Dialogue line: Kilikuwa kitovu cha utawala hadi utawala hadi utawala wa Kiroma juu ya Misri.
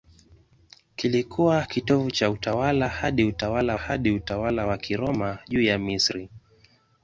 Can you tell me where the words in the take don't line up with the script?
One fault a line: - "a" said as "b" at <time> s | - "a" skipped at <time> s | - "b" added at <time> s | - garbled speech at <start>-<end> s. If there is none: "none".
none